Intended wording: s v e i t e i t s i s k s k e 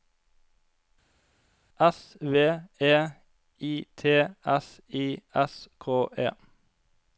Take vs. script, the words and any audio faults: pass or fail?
fail